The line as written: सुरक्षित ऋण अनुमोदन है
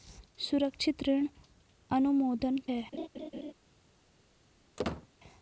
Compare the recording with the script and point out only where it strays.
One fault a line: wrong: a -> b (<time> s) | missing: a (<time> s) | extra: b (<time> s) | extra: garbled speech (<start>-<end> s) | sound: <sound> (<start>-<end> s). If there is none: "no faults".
sound: laugh (2.9-3.5 s)
sound: squeak (4.8-5.1 s)